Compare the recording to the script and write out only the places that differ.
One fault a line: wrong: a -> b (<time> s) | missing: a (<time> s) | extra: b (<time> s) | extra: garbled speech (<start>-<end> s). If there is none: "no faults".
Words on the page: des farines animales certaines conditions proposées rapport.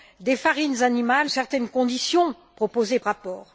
no faults